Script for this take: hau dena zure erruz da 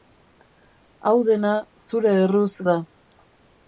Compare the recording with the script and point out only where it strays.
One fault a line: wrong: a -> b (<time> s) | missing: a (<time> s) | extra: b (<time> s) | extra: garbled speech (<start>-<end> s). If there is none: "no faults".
no faults